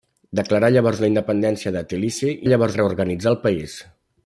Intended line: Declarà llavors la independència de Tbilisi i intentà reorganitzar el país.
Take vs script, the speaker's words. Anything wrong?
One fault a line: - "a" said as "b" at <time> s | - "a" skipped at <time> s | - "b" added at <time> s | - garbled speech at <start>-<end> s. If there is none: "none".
- "intentà" said as "llavors" at 2.5 s